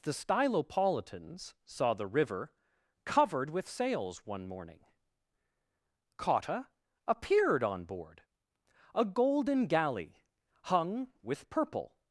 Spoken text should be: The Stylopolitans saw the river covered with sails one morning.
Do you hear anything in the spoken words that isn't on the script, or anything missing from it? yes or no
yes